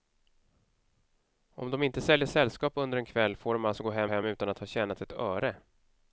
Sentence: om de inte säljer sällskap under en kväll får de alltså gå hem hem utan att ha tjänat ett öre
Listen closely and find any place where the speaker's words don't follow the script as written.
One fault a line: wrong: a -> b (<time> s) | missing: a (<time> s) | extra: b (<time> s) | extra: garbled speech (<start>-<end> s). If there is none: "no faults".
no faults